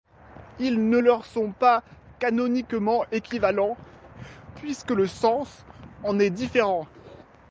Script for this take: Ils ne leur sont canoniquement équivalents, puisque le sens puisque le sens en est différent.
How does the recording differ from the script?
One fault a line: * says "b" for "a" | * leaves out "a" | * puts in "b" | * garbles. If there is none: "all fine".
* puts in "pas"
* leaves out "puisque le sens"